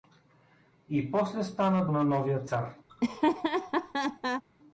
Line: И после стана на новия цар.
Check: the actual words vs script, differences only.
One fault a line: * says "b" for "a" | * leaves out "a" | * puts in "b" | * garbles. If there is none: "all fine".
all fine